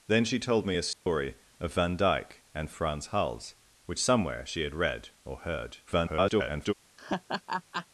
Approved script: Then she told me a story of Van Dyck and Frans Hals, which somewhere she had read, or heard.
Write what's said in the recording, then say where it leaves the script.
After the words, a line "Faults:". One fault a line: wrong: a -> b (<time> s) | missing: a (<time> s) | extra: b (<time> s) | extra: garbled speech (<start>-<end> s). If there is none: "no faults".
Then she told me a story of Van Dyck and Frans Hals, which somewhere she had read, or heard. [garbled]
Faults:
extra: garbled speech (5.9-6.7 s)